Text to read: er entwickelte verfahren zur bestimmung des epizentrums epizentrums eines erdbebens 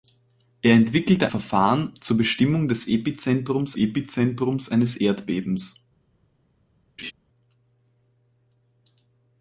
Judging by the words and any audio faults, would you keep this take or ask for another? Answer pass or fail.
fail